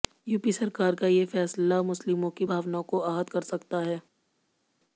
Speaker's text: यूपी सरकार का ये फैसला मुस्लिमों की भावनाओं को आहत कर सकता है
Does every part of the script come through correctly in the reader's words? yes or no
yes